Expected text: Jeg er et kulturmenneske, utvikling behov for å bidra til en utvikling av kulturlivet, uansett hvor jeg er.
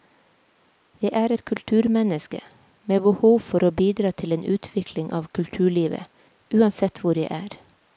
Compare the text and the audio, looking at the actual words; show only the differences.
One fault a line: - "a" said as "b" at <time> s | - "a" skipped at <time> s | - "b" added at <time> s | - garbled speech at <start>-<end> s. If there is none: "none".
- "utvikling" said as "med" at 2.9 s